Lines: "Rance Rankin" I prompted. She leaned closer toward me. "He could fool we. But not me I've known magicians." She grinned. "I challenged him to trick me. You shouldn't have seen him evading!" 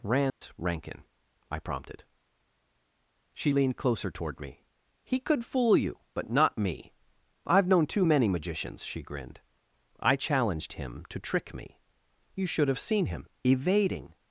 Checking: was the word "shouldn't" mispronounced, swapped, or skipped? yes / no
yes